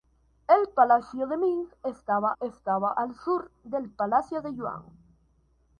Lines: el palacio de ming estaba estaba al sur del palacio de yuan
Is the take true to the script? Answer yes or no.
yes